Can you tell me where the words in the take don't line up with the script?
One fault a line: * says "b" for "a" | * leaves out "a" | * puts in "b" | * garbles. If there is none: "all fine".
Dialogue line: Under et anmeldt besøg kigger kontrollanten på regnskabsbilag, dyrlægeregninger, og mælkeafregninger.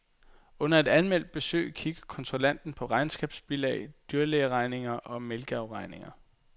all fine